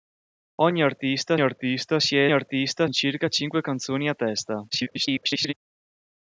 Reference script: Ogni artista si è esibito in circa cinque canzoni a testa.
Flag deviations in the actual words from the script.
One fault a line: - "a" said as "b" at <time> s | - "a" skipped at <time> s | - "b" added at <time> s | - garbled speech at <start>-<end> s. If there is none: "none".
- "artista" added at 1.4 s
- "esibito" said as "artista" at 2.3 s
- garbled speech at 4.7-5.5 s